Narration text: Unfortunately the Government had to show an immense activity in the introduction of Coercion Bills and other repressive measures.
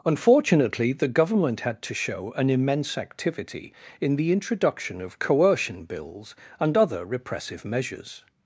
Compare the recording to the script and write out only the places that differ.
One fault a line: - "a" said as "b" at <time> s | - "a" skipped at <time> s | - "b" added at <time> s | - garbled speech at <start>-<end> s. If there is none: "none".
none